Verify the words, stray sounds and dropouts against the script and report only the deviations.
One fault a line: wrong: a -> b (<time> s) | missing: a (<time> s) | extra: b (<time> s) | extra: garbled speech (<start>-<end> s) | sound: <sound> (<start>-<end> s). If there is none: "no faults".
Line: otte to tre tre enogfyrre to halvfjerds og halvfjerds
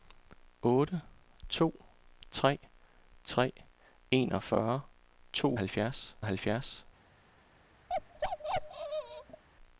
sound: bark (7.9-9.4 s)